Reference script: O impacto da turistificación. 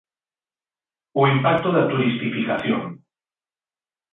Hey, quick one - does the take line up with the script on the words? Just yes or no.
yes